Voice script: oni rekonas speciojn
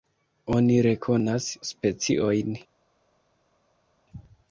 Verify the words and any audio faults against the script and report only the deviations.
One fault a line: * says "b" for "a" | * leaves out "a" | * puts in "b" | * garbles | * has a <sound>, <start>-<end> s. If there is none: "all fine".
all fine